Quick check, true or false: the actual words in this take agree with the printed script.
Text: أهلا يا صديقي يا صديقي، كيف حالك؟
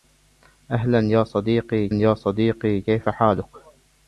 true